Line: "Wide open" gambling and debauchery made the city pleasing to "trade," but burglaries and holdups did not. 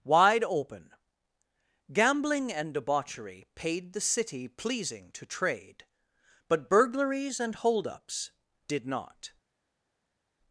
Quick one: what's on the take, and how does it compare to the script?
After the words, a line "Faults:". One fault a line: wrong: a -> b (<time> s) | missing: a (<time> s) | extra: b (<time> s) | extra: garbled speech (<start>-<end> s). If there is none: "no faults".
"Wide open" gambling and debauchery paid the city pleasing to "trade," but burglaries and holdups did not.
Faults:
wrong: made -> paid (3.5 s)